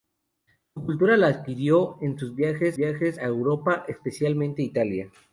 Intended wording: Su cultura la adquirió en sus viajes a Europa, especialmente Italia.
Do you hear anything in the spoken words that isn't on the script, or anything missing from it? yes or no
yes